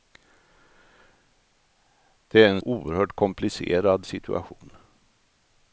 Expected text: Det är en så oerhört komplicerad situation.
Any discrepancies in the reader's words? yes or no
yes